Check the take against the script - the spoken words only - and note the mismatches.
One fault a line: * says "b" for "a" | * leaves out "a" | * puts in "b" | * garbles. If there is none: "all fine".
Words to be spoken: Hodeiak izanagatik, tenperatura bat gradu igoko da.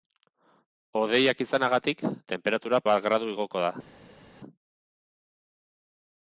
all fine